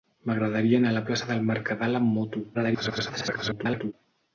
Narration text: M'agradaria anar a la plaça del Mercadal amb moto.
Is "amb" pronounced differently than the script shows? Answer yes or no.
no